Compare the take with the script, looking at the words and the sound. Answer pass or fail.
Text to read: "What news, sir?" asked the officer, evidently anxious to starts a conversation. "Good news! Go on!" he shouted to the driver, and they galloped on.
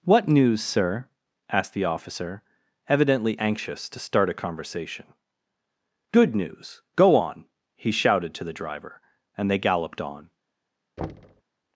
fail